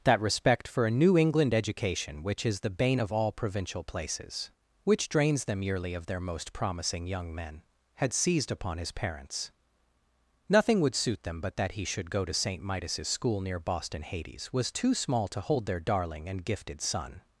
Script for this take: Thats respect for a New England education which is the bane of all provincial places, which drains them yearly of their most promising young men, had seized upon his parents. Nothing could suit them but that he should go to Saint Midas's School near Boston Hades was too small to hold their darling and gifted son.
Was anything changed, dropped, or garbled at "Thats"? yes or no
yes